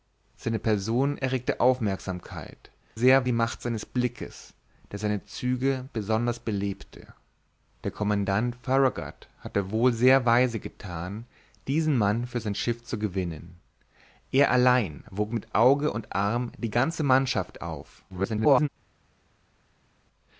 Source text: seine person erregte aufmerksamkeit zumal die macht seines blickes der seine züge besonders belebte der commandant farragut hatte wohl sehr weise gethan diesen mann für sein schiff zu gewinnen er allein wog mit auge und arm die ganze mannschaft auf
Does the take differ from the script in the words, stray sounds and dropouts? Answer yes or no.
yes